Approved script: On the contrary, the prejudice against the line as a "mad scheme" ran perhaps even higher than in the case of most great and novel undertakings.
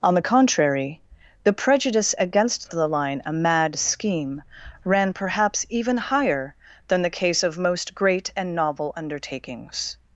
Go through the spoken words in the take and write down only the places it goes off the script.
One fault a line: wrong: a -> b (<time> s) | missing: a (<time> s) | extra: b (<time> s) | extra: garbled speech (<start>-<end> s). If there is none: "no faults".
missing: as (3.2 s)
missing: in (7.0 s)